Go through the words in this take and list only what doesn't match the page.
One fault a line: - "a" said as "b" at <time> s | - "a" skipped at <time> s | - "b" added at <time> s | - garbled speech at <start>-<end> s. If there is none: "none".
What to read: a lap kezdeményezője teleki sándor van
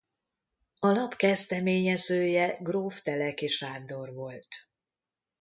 - "gróf" added at 2.6 s
- "van" said as "volt" at 4.1 s